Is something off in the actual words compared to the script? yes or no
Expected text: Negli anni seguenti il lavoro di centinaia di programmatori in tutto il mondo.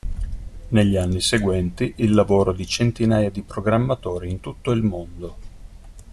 no